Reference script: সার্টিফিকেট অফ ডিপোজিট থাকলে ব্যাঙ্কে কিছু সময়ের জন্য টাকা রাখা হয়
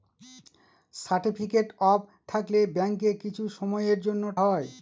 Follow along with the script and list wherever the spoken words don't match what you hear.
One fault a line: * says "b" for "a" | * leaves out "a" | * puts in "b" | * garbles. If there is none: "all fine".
* leaves out "ডিপোজিট"
* leaves out "টাকা রাখা"